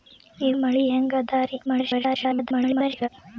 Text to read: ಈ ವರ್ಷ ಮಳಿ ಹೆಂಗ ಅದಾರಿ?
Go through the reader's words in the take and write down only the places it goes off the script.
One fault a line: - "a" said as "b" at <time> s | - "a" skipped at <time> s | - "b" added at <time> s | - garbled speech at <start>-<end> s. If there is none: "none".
- "ವರ್ಷ" skipped at 0.5 s
- garbled speech at 1.7-3.1 s